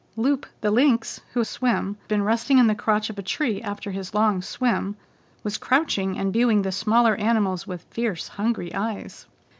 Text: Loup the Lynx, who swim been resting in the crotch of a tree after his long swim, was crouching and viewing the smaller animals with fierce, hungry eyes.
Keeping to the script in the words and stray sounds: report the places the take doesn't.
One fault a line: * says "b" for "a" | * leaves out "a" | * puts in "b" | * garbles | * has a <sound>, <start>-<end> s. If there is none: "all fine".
all fine